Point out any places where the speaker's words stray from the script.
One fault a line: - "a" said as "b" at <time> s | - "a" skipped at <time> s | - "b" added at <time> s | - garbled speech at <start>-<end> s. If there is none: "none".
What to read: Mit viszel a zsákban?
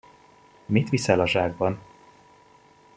none